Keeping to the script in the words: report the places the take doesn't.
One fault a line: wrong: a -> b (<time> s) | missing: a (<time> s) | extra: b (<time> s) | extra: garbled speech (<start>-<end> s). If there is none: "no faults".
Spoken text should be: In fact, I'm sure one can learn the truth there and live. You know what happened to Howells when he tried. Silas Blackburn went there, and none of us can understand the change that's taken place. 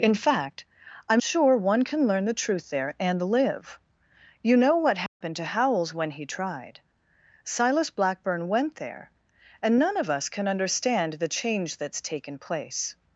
no faults